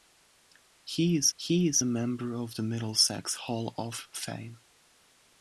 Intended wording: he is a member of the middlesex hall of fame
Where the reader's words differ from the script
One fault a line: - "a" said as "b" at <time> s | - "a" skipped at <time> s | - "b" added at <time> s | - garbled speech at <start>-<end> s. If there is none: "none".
- "he is" added at 1.3 s